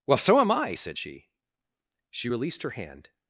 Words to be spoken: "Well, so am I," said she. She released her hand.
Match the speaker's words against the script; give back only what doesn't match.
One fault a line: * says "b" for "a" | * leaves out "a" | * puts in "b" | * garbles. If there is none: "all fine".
all fine